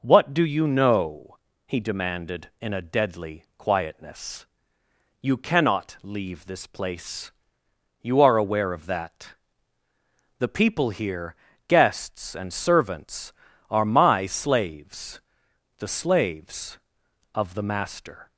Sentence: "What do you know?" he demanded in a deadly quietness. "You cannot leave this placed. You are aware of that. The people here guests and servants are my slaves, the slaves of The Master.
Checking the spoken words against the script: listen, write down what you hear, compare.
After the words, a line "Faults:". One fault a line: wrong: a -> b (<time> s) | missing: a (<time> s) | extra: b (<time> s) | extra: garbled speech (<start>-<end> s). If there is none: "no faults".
"What do you know?" he demanded in a deadly quietness. "You cannot leave this place. You are aware of that. The people here guests and servants are my slaves, the slaves of The Master.
Faults:
wrong: placed -> place (6.7 s)